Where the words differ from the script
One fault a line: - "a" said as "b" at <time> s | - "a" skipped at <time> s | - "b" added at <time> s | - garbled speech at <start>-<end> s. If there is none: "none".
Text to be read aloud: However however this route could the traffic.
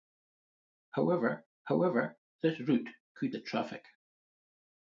none